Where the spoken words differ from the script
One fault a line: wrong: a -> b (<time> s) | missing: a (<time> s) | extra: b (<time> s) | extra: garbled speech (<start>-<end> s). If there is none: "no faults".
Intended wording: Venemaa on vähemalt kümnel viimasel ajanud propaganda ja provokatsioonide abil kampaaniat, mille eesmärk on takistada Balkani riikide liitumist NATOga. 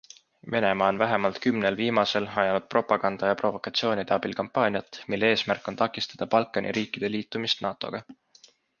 no faults